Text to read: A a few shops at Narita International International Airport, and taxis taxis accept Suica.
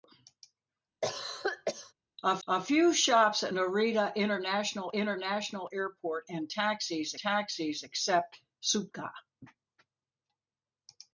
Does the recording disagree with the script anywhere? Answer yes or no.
no